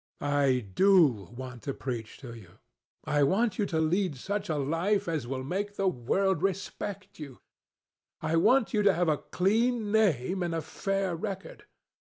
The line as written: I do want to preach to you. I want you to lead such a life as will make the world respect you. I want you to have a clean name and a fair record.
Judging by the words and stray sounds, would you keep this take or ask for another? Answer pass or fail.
pass